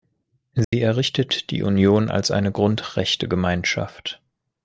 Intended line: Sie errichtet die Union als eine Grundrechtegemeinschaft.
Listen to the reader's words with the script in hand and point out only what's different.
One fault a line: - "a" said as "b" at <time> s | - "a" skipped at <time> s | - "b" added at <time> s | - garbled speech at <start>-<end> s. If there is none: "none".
none